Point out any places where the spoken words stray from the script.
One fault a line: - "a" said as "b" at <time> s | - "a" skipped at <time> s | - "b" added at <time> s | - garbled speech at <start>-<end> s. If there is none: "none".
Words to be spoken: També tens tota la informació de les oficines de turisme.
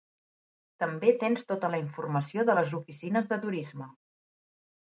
none